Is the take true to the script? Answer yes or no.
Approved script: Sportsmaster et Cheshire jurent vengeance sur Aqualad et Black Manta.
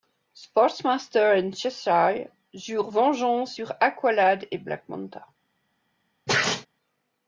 yes